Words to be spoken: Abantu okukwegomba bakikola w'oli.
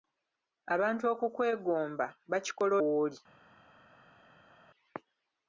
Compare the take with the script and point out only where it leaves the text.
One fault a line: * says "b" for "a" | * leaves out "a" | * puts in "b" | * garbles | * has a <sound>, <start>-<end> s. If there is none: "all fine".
all fine